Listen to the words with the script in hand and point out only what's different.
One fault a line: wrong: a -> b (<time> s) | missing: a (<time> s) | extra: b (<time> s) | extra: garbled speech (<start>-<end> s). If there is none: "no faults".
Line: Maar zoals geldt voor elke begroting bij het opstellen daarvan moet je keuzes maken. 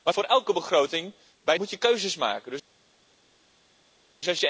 missing: zoals geldt (0.1 s)
missing: het opstellen daarvan (1.5 s)